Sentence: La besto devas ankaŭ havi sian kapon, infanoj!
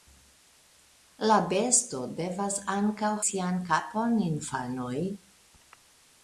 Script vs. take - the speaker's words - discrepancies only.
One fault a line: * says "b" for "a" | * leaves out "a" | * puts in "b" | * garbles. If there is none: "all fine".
* leaves out "havi"